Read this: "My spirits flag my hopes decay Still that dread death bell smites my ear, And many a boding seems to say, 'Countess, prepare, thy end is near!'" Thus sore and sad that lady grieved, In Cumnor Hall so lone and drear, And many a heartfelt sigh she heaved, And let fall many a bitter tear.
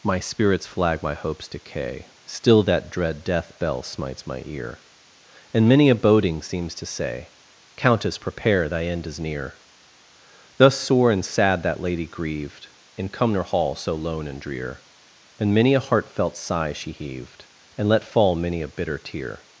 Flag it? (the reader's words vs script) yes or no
no